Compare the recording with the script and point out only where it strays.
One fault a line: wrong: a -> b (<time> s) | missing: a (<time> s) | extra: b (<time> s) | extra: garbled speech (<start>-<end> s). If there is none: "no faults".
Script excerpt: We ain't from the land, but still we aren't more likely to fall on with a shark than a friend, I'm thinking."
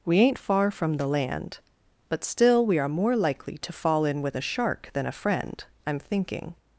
extra: far (0.4 s)
wrong: aren't -> are (2.8 s)
wrong: on -> in (4.0 s)